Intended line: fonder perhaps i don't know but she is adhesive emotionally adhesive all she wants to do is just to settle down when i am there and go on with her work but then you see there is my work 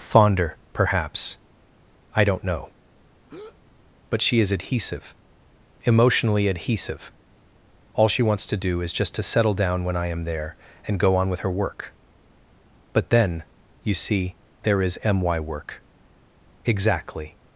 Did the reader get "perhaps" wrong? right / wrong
right